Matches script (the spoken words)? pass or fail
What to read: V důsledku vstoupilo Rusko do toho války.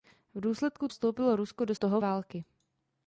pass